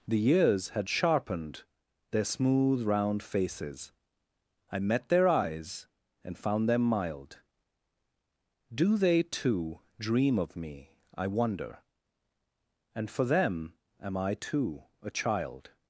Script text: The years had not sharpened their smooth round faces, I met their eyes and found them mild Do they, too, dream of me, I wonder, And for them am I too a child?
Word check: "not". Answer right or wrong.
wrong